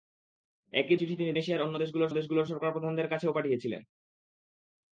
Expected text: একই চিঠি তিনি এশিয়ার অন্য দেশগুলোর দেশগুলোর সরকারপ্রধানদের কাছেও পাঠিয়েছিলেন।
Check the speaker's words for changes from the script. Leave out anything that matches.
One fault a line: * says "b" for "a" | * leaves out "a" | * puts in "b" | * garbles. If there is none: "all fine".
all fine